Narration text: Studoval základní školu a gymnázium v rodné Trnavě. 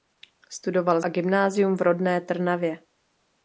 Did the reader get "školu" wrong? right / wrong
wrong